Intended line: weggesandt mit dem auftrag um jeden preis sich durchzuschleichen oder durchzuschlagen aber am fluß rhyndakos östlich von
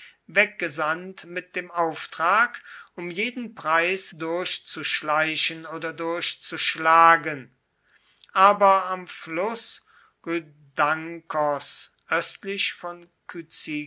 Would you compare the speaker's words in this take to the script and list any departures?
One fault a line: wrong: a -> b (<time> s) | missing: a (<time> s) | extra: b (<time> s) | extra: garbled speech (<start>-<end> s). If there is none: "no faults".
missing: sich (4.1 s)